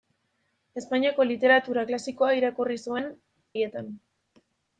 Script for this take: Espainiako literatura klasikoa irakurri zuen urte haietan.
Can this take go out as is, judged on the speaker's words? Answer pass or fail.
fail